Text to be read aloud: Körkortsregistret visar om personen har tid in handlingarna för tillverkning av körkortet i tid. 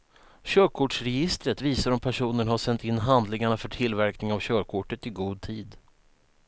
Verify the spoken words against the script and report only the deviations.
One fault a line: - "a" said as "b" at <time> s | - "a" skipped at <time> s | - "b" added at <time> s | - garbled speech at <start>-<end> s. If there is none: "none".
- "tid" said as "sänt" at 2.6 s
- "god" added at 5.1 s